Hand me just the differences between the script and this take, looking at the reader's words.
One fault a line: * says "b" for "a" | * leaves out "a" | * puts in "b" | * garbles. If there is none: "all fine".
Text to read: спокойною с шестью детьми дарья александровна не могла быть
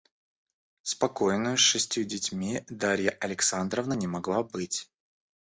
all fine